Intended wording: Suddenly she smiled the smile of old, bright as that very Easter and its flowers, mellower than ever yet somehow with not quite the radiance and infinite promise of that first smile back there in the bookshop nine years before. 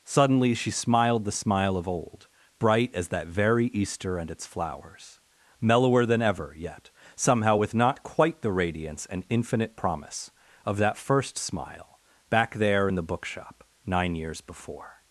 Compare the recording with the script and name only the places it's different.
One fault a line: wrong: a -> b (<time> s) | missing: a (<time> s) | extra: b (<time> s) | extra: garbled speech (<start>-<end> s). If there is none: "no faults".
no faults